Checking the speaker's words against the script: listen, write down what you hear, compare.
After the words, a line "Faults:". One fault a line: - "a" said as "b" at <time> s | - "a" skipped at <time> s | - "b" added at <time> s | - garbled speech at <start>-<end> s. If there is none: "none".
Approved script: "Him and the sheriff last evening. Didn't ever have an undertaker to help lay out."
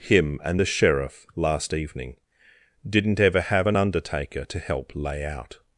"Him and the sheriff last evening. Didn't ever have an undertaker to help lay out."
Faults:
none